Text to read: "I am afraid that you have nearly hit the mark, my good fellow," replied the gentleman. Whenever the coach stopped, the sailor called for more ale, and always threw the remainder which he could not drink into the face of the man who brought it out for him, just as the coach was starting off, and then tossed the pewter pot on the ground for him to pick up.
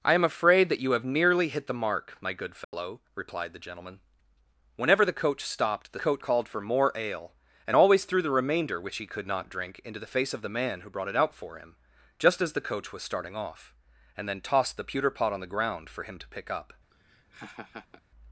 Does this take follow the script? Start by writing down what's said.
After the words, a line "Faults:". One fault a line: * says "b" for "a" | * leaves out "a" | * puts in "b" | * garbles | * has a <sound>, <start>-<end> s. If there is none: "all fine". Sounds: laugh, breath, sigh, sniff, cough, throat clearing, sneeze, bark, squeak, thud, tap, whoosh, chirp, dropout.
"I am afraid that you have nearly hit the mark, my good fellow," replied the gentleman. Whenever the coach stopped, the coach called for more ale, and always threw the remainder which he could not drink into the face of the man who brought it out for him, just as the coach was starting off, and then tossed the pewter pot on the ground for him to pick up.
Faults:
* has a dropout, 2.6-2.7 s
* says "coach" for "sailor"
* has a laugh, 16.9-18.0 s